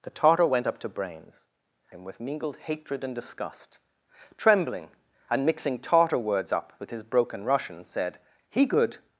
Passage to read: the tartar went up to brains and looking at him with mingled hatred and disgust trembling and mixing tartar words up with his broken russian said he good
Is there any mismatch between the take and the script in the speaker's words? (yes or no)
yes